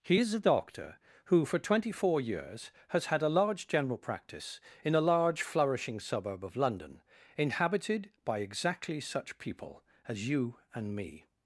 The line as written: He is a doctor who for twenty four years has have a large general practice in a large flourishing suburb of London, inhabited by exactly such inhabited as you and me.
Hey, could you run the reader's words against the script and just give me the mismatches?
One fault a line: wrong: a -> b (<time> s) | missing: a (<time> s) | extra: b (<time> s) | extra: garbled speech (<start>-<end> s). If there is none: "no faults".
wrong: have -> had (3.1 s)
wrong: inhabited -> people (9.4 s)